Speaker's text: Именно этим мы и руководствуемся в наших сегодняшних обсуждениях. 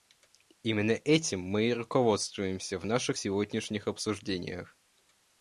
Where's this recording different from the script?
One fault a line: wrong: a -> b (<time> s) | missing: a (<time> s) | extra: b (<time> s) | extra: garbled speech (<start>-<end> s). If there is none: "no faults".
no faults